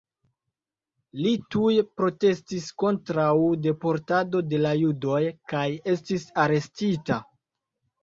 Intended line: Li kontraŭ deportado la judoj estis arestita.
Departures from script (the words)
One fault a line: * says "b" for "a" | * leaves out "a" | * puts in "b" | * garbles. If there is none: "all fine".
* puts in "tuj protestis"
* puts in "de"
* puts in "kaj"